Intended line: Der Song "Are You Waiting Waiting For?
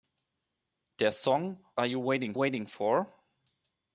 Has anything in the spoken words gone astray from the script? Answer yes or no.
no